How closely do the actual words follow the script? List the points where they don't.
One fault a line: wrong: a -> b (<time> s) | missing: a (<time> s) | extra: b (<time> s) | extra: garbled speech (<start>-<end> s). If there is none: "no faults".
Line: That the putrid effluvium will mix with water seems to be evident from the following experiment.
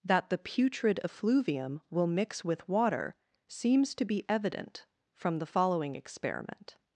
no faults